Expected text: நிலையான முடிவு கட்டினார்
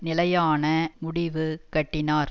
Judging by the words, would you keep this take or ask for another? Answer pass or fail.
pass